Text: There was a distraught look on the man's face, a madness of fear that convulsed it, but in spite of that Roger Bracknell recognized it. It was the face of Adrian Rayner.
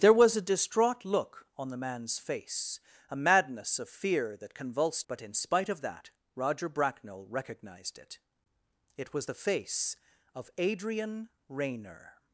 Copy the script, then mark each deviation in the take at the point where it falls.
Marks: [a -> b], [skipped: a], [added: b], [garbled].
There was a distraught look on the man's face, a madness of fear that convulsed [skipped: it,] but in spite of that Roger Bracknell recognized it. It was the face of Adrian Rayner.